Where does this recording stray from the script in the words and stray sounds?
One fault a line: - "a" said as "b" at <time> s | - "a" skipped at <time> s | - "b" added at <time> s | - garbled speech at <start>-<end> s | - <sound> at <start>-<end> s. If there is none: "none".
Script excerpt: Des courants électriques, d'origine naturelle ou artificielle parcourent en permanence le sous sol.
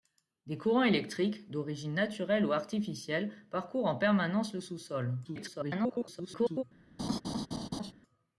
- garbled speech at 5.2-6.6 s
- laugh at 7.0-7.9 s